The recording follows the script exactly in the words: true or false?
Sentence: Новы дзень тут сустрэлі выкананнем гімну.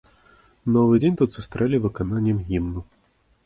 true